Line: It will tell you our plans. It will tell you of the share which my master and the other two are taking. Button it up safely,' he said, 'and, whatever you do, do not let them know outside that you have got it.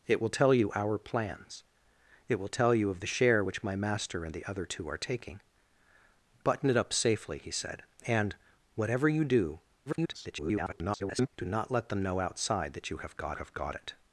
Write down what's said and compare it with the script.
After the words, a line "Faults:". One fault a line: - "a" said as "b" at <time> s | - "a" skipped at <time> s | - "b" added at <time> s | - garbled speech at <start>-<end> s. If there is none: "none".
It will tell you our plans. It will tell you of the share which my master and the other two are taking. Button it up safely,' he said, 'and, whatever you do, [garbled] do not let them know outside that you have got have got it.
Faults:
- garbled speech at 9.9-11.3 s
- "have got" added at 13.3 s